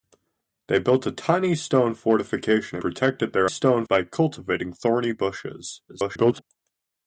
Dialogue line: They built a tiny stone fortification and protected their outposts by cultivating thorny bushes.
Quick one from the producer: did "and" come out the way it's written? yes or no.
no